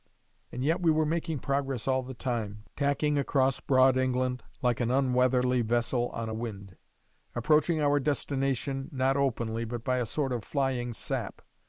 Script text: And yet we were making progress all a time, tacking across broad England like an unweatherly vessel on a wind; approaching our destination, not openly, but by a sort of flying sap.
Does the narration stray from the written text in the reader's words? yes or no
yes